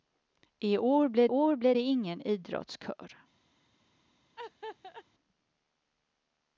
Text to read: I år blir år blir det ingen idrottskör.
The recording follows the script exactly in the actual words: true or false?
true